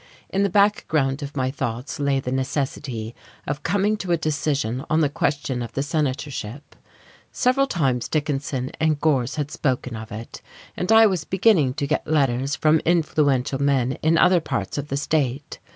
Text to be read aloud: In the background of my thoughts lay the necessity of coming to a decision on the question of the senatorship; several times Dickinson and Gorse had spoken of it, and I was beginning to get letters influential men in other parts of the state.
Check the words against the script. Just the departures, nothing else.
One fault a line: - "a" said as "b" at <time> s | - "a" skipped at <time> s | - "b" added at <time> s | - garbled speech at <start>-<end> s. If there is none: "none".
- "from" added at 12.6 s